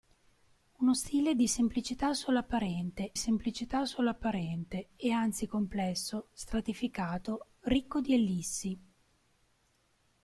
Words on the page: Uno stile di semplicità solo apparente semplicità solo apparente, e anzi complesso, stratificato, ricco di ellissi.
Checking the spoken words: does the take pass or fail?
pass